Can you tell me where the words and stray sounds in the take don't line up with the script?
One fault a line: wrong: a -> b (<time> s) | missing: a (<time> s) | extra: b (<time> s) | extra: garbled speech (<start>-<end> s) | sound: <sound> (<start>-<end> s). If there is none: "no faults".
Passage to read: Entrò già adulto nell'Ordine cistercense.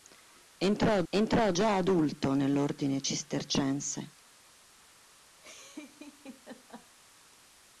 extra: entrò (1.1 s)
sound: laugh (5.4-6.9 s)